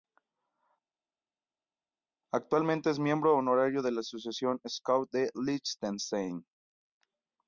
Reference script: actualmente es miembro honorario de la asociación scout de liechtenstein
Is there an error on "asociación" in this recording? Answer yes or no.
no